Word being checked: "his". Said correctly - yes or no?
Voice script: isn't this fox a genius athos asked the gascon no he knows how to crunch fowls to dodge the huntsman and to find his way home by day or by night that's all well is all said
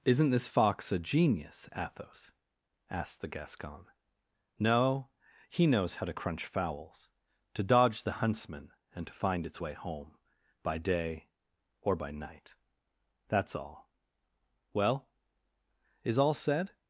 no